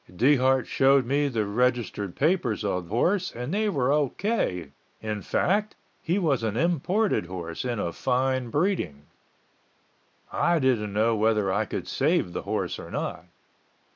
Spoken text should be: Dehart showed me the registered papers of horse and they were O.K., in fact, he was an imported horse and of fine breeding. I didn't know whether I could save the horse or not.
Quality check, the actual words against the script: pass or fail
pass